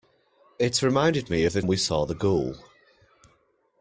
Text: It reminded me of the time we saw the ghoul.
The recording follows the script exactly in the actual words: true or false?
false